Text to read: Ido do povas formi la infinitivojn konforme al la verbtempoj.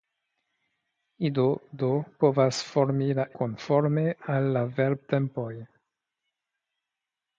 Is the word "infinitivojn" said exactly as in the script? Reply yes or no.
no